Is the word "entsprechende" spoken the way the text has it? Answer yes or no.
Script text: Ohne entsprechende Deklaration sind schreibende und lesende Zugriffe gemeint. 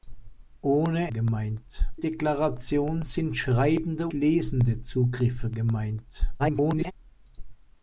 no